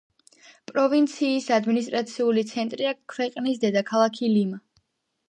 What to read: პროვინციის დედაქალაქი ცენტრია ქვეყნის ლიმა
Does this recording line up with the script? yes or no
no